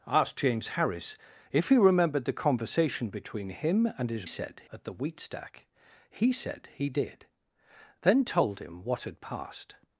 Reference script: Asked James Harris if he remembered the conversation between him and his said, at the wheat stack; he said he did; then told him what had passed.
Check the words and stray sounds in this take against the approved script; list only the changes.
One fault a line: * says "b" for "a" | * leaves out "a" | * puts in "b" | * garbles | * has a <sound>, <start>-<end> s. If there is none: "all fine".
all fine